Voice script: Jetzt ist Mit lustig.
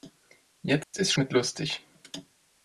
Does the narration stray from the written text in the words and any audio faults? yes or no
yes